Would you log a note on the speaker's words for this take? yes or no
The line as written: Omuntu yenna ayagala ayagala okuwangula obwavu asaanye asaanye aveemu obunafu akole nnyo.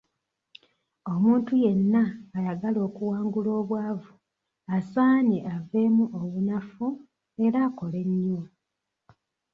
yes